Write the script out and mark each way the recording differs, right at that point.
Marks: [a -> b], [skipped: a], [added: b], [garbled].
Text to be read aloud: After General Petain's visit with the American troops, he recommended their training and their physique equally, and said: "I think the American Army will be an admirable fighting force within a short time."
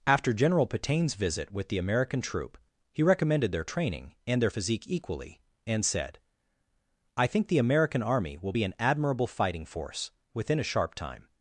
After General Petain's visit with the American [troops, -> troop] he recommended their training and their physique equally, and said: "I think the American Army will be an admirable fighting force within a [short -> sharp] time."